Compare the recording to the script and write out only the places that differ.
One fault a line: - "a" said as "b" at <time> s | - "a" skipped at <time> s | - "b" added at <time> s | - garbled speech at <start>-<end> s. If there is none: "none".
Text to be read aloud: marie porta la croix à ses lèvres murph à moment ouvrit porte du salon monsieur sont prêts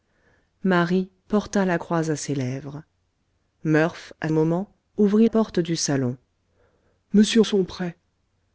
none